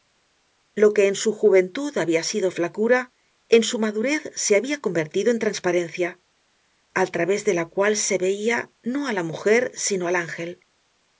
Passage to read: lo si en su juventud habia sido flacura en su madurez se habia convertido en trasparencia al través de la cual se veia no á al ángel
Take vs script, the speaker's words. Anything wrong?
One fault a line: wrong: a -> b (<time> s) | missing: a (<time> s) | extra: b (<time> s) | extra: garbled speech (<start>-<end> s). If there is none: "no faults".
wrong: si -> que (0.9 s)
extra: la mujer sino (9.1 s)